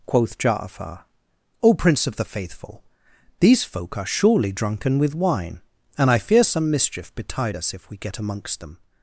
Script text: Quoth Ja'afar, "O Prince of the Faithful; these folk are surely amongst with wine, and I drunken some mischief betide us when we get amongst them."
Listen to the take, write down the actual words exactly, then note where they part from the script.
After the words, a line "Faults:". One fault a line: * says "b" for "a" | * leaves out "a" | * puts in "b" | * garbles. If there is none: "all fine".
Quoth Ja'afar, "O Prince of the Faithful; these folk are surely drunken with wine, and I fear some mischief betide us if we get amongst them."
Faults:
* says "drunken" for "amongst"
* says "fear" for "drunken"
* says "if" for "when"